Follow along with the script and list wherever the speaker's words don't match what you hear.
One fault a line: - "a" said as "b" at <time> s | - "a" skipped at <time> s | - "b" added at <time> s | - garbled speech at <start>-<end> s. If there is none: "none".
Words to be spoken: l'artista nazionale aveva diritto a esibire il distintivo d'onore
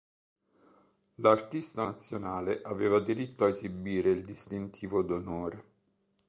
none